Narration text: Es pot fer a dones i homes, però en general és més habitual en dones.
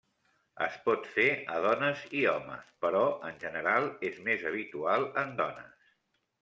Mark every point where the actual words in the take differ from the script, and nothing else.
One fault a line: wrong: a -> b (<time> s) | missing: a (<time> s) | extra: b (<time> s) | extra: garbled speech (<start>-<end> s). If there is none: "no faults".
no faults